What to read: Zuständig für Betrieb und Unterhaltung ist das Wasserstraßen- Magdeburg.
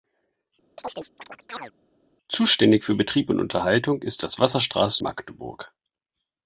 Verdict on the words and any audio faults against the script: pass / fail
fail